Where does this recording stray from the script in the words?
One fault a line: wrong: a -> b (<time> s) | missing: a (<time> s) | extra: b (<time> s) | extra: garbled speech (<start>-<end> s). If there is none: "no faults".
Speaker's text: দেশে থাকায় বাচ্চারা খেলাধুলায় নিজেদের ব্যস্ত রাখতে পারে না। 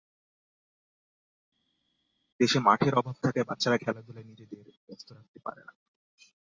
extra: মাঠের অভাব (2.6 s)